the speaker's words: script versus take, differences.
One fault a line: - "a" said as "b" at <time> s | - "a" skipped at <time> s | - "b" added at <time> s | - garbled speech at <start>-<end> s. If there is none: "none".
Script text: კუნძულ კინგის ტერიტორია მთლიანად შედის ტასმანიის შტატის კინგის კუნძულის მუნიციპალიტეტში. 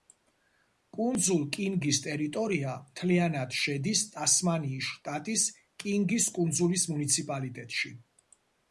none